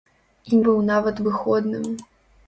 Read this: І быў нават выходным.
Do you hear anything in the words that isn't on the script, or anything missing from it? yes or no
no